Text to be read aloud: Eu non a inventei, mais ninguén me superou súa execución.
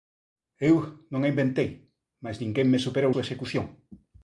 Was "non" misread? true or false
false